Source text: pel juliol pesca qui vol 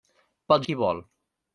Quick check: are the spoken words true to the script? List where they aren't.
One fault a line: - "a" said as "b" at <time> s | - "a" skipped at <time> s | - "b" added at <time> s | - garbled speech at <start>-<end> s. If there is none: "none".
- "juliol pesca" skipped at 0.7 s